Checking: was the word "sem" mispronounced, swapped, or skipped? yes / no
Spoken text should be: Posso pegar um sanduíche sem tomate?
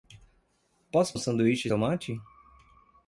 yes